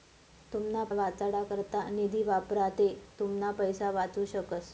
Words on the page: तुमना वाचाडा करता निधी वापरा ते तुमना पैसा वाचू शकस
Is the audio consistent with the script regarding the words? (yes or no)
yes